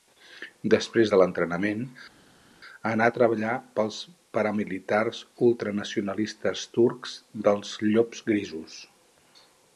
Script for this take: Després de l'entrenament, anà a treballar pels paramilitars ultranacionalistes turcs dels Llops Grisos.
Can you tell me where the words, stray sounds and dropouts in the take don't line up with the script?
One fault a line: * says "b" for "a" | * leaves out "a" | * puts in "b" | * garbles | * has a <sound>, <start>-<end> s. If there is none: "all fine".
all fine